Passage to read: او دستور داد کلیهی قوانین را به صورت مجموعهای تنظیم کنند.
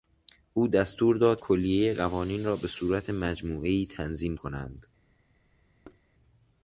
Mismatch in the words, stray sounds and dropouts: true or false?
true